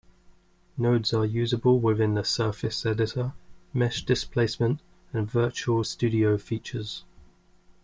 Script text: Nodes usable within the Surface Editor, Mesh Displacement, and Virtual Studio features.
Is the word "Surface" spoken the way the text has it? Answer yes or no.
yes